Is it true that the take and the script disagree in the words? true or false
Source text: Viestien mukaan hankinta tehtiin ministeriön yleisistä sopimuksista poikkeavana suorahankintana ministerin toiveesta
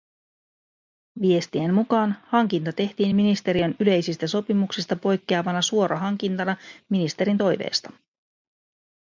false